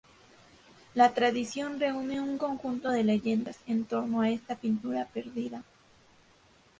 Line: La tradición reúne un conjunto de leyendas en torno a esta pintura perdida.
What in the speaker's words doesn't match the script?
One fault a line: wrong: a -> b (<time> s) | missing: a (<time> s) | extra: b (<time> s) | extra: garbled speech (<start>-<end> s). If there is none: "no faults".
no faults